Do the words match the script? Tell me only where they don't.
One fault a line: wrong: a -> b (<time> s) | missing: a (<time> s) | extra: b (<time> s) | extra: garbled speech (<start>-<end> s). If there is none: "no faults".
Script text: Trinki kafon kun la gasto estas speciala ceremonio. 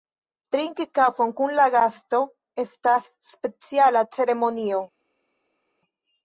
no faults